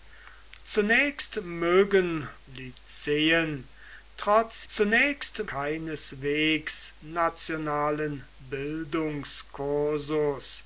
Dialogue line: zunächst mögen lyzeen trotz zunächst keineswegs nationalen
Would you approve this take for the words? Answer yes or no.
yes